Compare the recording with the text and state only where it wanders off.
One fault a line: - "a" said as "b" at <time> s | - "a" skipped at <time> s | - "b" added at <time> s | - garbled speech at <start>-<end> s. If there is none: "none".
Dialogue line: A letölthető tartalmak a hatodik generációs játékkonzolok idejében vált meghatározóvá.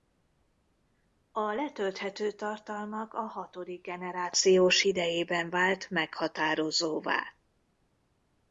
- "játékkonzolok" skipped at 4.8 s